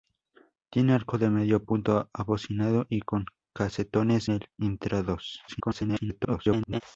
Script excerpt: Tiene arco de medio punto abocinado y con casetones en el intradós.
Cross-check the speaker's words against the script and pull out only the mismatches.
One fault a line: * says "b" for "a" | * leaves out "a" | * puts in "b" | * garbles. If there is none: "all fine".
* leaves out "en"
* garbles